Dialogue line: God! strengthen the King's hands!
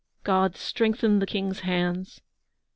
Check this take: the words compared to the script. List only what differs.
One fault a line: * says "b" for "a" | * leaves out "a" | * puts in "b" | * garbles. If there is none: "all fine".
all fine